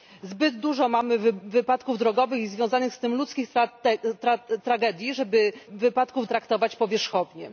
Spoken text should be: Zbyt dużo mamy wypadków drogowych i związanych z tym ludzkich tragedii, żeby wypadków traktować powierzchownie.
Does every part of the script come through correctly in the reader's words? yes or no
yes